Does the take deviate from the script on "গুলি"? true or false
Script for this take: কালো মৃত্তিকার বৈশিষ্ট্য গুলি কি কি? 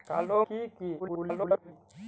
true